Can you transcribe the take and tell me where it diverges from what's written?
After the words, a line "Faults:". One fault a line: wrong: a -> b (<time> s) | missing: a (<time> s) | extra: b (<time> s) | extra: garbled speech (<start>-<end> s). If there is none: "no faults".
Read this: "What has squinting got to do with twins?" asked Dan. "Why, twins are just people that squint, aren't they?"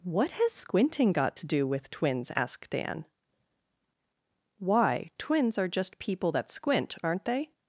"What has squinting got to do with twins?" asked Dan. "Why, twins are just people that squint, aren't they?"
Faults:
no faults